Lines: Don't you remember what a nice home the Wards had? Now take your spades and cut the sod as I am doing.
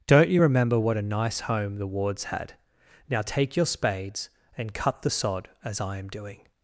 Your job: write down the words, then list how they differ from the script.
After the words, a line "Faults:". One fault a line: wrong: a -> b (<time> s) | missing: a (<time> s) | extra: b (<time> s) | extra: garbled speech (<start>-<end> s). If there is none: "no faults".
Don't you remember what a nice home the Wards had? Now take your spades and cut the sod as I am doing.
Faults:
no faults